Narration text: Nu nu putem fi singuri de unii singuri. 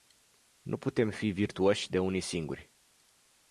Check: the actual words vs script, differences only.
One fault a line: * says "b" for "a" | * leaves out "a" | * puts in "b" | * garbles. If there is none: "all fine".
* leaves out "nu"
* says "virtuoși" for "singuri"